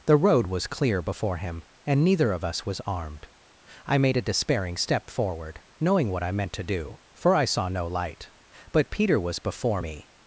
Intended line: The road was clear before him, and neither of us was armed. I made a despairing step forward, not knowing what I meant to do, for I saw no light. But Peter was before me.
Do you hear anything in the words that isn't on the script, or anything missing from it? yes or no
yes